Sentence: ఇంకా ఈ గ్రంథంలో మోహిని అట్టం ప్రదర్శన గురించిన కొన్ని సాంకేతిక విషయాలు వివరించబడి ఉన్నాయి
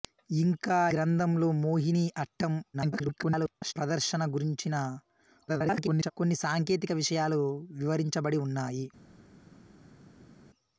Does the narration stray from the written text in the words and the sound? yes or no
yes